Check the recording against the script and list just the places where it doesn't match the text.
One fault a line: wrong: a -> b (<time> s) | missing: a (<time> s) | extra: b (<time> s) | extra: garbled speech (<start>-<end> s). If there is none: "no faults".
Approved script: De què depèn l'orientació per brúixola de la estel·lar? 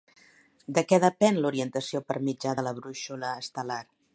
wrong: brúixola -> mitjà (2.3 s)
extra: brúixola (2.8 s)